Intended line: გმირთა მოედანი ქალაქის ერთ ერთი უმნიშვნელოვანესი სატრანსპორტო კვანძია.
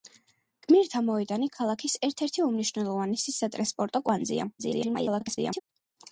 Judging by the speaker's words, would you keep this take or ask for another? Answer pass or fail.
fail